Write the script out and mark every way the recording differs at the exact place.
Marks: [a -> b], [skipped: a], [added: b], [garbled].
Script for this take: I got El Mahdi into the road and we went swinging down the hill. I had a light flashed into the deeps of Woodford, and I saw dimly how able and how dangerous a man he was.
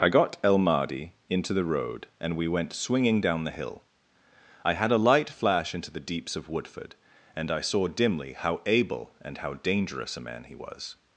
I got El Mahdi into the road and we went swinging down the hill. I had a light [flashed -> flash] into the deeps of Woodford, and I saw dimly how able and how dangerous a man he was.